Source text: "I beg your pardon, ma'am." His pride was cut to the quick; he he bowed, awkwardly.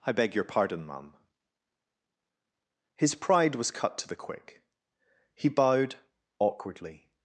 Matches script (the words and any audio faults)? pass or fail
fail